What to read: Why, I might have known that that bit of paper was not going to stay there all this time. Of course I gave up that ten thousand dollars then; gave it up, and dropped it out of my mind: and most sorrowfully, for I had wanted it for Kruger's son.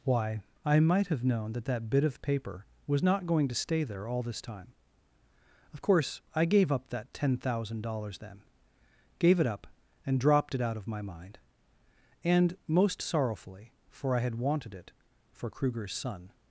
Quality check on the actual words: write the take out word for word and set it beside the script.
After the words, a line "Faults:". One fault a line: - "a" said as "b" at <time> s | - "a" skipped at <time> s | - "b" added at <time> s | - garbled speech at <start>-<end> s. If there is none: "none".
Why, I might have known that that bit of paper was not going to stay there all this time. Of course I gave up that ten thousand dollars then; gave it up, and dropped it out of my mind: and most sorrowfully, for I had wanted it for Kruger's son.
Faults:
none